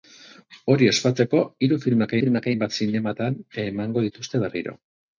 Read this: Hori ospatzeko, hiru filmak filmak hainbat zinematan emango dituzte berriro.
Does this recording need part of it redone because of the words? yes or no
no